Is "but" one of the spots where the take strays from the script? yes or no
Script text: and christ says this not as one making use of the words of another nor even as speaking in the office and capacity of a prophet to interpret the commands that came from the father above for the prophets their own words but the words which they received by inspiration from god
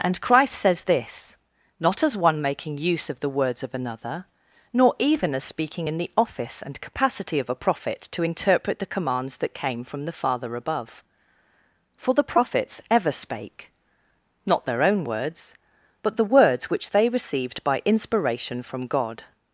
no